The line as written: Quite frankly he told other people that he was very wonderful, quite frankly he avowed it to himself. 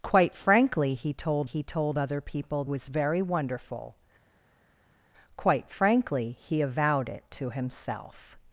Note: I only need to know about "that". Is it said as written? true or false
false